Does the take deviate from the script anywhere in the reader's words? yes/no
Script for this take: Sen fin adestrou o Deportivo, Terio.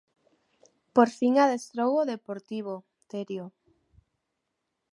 yes